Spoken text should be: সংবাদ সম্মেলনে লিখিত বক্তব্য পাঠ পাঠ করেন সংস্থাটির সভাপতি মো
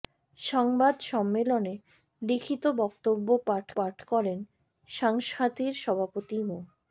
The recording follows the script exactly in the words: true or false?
true